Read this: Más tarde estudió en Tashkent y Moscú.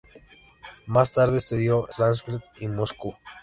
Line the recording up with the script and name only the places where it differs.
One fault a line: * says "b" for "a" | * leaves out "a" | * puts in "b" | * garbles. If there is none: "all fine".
* leaves out "en"